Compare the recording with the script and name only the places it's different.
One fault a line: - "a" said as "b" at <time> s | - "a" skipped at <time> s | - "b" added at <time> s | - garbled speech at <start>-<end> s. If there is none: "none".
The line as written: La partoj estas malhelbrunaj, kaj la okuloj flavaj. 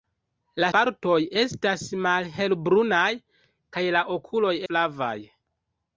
none